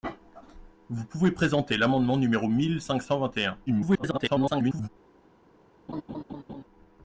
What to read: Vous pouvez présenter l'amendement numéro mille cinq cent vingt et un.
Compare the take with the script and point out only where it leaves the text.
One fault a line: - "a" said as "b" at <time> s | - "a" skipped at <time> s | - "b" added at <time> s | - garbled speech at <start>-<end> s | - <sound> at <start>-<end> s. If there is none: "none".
- garbled speech at 3.7-4.9 s
- laugh at 5.9-6.6 s